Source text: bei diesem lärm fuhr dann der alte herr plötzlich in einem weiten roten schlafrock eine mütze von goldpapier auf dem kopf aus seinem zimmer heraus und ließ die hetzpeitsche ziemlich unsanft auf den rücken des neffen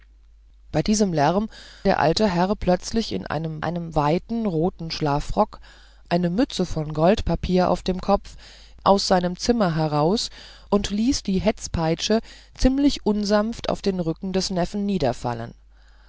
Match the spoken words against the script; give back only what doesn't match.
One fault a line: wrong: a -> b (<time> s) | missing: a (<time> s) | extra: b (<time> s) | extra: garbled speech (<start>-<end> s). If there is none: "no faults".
missing: fuhr dann (1.5 s)
extra: einem (3.6 s)